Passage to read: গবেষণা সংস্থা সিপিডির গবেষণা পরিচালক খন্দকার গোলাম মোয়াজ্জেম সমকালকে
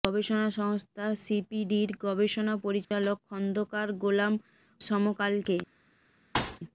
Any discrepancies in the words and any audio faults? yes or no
yes